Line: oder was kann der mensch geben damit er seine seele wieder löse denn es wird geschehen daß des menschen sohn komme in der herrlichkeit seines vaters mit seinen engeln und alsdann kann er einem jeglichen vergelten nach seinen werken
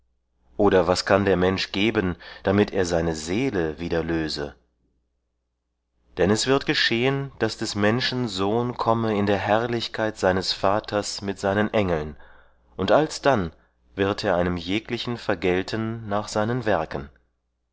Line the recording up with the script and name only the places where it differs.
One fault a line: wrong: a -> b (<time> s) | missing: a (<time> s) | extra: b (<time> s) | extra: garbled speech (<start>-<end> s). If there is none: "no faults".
wrong: kann -> wird (14.0 s)